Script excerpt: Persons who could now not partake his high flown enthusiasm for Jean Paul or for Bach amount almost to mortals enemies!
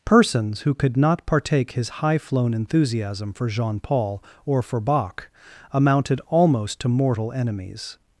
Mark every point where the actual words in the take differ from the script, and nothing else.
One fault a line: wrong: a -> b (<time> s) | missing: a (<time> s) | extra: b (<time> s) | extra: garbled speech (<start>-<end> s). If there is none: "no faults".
missing: now (1.0 s)
wrong: amount -> amounted (5.7 s)
wrong: mortals -> mortal (6.9 s)